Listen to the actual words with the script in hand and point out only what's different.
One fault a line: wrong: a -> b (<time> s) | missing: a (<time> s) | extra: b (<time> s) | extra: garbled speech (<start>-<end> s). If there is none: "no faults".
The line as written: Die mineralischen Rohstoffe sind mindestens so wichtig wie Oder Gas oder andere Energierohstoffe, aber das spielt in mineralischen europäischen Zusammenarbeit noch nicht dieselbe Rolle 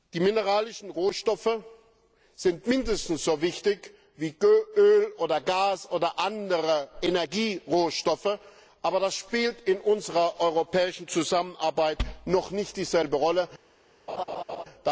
extra: Öl (4.8 s)
wrong: mineralischen -> unserer (9.8 s)